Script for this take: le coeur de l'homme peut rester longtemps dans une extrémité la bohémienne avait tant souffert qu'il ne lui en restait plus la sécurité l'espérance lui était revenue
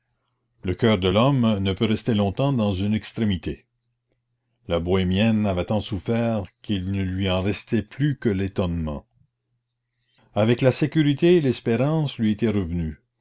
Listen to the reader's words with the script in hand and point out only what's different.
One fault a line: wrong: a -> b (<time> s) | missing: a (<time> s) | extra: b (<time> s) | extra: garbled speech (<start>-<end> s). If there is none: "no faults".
extra: ne (1.6 s)
extra: que l'étonnement avec (8.2 s)